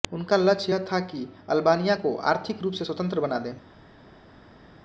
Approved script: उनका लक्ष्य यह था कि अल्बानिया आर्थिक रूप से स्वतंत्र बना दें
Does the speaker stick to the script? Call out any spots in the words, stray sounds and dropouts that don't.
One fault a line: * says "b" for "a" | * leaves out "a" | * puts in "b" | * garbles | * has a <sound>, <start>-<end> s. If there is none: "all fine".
* puts in "को"